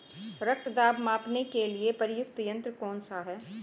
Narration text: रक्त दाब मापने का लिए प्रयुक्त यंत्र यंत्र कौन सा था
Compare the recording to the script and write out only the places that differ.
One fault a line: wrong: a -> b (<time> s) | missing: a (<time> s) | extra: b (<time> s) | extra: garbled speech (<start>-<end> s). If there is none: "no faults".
wrong: का -> के (1.4 s)
missing: यंत्र (2.7 s)
wrong: था -> है (3.2 s)